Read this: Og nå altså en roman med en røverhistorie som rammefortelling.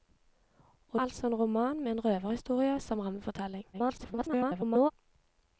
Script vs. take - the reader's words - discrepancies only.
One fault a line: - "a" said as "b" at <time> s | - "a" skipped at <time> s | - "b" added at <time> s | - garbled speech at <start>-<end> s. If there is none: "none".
- "nå" skipped at 1.0 s
- garbled speech at 3.7-4.9 s